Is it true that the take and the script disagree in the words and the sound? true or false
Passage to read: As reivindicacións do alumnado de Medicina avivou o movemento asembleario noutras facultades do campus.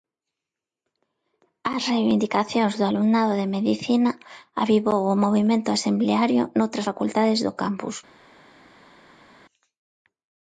false